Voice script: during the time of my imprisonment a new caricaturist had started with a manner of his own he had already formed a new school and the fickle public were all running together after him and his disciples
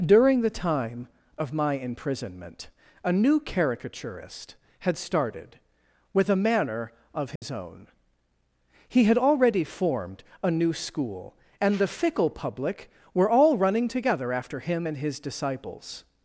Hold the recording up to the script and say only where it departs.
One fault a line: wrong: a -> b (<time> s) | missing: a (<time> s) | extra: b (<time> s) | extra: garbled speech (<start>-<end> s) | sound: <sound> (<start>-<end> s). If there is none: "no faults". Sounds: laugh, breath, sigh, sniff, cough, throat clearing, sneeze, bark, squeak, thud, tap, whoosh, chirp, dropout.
sound: dropout (7.4-7.4 s)